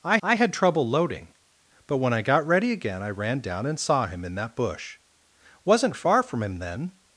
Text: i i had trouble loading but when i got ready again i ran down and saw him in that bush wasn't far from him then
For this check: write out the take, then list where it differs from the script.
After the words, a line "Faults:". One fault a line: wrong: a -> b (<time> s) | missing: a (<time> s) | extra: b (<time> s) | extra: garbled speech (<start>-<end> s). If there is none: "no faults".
i i had trouble loading but when i got ready again i ran down and saw him in that bush wasn't far from him then
Faults:
no faults